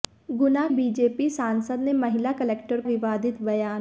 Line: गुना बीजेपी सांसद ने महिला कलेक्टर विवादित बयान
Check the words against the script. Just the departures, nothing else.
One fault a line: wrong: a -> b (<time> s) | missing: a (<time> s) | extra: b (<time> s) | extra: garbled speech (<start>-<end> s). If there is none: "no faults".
no faults